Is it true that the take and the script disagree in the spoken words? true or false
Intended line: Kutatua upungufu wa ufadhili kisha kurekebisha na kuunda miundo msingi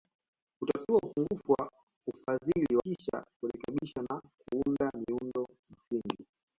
false